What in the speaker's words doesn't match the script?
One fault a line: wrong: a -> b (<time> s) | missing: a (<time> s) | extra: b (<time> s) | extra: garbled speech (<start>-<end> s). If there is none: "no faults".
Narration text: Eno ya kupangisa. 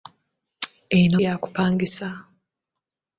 no faults